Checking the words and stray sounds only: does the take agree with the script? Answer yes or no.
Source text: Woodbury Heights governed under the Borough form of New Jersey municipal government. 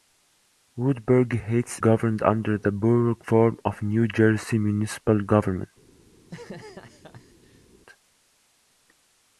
no